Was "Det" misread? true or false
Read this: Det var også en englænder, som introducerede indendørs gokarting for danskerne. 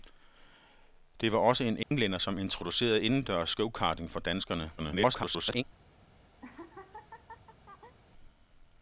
false